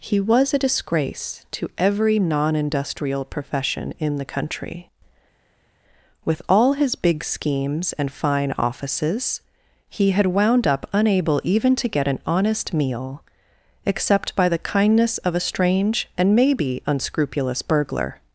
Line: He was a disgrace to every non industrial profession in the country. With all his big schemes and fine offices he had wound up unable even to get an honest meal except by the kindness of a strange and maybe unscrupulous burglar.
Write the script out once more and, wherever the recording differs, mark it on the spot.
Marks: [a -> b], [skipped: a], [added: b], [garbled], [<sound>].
He was a disgrace to every non industrial profession in the country. With all his big schemes and fine offices he had wound up unable even to get an honest meal except by the kindness of a strange and maybe unscrupulous burglar.